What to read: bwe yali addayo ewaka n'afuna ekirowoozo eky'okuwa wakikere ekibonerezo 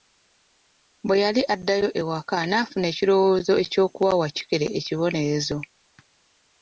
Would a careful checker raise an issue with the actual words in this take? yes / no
no